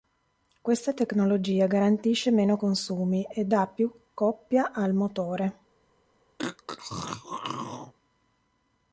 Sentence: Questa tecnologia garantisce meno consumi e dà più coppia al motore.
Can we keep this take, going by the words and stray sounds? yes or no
no